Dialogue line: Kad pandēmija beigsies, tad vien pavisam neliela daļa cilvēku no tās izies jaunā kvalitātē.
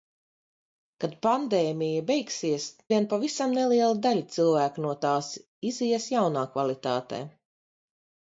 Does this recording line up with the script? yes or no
no